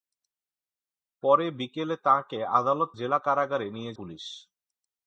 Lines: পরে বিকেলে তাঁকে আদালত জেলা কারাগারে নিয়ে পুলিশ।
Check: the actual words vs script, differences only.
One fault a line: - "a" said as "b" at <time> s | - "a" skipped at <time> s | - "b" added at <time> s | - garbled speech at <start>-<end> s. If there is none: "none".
none